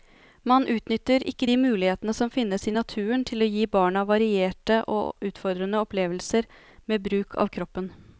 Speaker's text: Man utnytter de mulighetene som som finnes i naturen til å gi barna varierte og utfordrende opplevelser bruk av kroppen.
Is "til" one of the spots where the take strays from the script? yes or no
no